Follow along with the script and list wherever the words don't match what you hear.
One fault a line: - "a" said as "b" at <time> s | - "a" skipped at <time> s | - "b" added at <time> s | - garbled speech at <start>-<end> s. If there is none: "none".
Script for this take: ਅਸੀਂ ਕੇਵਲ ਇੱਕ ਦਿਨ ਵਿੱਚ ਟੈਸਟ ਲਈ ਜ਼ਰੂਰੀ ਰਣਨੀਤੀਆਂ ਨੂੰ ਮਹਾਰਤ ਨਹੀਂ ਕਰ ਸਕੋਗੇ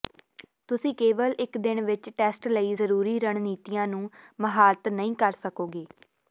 - "ਅਸੀਂ" said as "ਤੁਸੀਂ" at 0.7 s